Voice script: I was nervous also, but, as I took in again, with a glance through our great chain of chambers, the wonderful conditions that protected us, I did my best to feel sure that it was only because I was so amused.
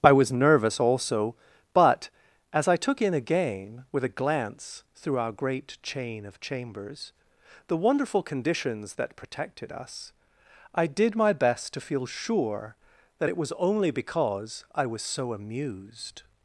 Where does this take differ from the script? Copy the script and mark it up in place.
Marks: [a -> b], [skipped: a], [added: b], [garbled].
I was nervous also, but, as I took in again, with a glance through our great chain of chambers, the wonderful conditions that protected us, I did my best to feel sure that it was only because I was so amused.